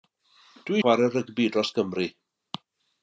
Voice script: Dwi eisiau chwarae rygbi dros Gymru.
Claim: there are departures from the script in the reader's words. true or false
true